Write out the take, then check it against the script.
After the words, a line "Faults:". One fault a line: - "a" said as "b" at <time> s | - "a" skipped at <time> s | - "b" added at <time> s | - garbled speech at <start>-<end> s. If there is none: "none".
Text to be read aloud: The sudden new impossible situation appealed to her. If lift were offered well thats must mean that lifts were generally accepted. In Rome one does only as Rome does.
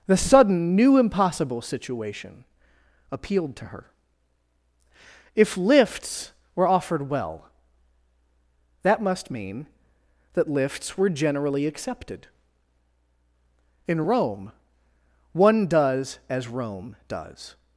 The sudden new impossible situation appealed to her. If lifts were offered well that must mean that lifts were generally accepted. In Rome one does as Rome does.
Faults:
- "lift" said as "lifts" at 5.6 s
- "thats" said as "that" at 8.8 s
- "only" skipped at 16.2 s